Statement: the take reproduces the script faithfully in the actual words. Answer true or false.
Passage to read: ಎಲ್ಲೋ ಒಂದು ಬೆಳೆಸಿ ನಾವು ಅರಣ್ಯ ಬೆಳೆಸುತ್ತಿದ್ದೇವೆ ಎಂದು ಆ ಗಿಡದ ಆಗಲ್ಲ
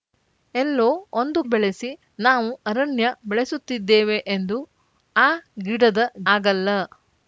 true